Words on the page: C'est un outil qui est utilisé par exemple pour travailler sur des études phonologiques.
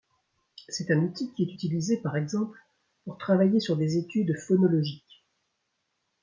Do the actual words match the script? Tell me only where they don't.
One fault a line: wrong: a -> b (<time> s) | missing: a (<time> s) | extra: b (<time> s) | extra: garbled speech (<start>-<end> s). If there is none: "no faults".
no faults